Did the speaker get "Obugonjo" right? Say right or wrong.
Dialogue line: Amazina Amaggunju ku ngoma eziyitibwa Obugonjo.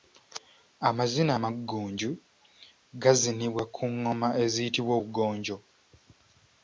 right